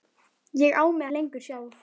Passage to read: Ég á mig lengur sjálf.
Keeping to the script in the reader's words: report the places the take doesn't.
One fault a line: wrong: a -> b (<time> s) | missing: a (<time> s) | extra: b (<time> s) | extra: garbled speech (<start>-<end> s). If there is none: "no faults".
no faults